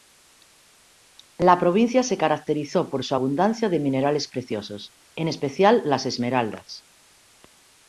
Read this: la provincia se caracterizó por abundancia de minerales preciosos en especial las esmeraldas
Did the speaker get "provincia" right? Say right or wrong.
right